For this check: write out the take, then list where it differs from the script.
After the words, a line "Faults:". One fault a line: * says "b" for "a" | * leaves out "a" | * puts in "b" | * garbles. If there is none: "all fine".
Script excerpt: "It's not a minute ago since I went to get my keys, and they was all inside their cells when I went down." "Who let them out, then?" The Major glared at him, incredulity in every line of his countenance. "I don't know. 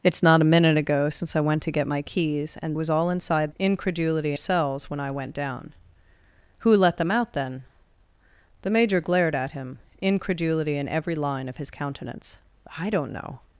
"It's not a minute ago since I went to get my keys, and was all inside incredulity cells when I went down." "Who let them out, then?" The Major glared at him, incredulity in every line of his countenance. "I don't know.
Faults:
* leaves out "they"
* says "incredulity" for "their"